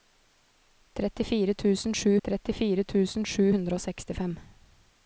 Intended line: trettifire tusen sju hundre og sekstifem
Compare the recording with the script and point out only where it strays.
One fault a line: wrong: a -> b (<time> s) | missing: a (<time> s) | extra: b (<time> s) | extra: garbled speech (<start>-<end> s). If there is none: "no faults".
extra: trettifire tusen sju (2.3 s)